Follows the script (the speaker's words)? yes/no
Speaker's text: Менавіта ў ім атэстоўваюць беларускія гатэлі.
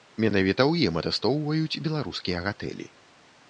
yes